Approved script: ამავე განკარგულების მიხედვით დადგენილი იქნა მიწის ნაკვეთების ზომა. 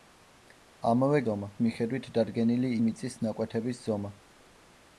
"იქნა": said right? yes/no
no